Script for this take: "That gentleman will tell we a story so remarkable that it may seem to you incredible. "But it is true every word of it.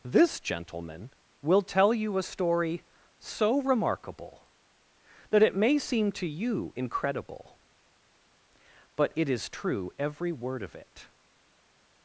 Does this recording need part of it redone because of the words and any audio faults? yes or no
yes